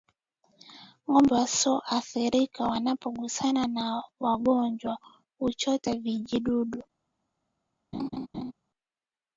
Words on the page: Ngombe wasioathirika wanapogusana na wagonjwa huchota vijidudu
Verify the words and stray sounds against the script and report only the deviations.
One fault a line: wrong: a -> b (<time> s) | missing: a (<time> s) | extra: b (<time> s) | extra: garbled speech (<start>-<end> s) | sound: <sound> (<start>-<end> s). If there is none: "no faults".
sound: laugh (7.9-8.5 s)